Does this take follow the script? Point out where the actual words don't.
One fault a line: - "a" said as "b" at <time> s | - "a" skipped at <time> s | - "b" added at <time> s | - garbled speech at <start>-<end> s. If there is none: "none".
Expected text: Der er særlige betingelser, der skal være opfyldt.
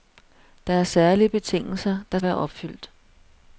- "skal" skipped at 2.2 s